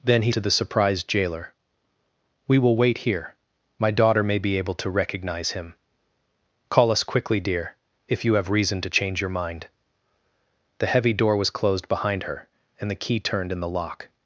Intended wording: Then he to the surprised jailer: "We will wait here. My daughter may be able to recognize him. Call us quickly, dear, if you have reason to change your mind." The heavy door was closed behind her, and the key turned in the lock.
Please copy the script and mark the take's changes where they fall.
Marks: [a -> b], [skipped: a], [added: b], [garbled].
Then he to the surprised jailer: "We will wait here. My daughter may be able to recognize him. Call us quickly, dear, if you have reason to change your mind." The heavy door was closed behind her, and the key turned in the lock.